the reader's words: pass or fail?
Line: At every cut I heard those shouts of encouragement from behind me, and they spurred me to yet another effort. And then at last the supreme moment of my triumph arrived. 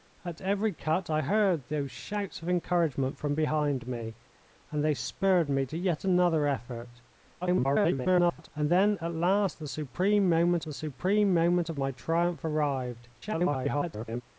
fail